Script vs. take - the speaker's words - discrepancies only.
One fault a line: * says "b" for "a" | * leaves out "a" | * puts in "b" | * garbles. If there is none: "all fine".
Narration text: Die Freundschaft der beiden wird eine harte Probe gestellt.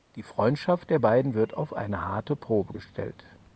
* puts in "auf"